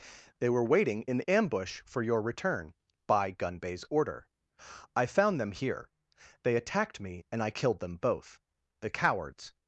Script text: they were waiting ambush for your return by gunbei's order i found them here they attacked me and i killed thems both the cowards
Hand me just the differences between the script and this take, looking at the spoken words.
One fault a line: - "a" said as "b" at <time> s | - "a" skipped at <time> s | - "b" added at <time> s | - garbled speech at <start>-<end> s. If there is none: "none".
- "in" added at 1.1 s
- "thems" said as "them" at 7.8 s